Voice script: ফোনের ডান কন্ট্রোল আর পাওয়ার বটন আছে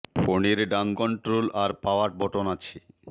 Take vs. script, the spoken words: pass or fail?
pass